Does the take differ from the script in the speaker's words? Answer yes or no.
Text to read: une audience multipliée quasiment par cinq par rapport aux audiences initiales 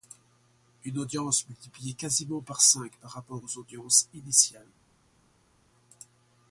no